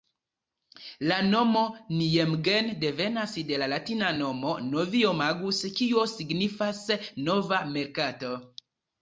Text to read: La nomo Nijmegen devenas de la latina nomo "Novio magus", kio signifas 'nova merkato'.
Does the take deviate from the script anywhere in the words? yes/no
no